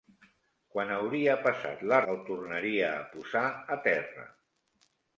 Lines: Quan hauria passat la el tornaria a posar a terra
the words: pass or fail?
pass